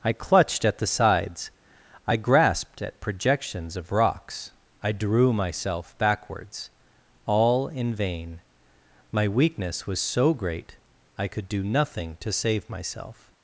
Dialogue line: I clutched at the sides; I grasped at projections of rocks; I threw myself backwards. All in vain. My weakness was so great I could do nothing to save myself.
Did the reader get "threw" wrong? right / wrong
wrong